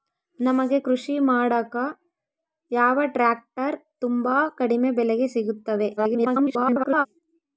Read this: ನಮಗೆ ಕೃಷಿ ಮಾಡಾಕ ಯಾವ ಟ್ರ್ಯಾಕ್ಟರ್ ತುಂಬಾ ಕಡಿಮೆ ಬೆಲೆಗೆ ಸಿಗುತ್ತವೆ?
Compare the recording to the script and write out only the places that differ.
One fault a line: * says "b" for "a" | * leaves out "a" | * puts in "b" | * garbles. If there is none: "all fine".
* garbles